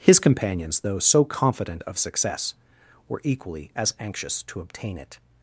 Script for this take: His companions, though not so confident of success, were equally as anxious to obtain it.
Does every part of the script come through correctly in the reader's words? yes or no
no